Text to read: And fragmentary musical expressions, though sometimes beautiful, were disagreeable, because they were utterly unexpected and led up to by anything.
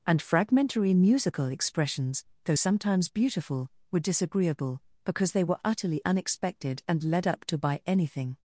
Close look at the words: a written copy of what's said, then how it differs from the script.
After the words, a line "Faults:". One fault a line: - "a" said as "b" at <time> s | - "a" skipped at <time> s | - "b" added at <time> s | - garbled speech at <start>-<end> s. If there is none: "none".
And fragmentary musical expressions, though sometimes beautiful, were disagreeable, because they were utterly unexpected and led up to by anything.
Faults:
none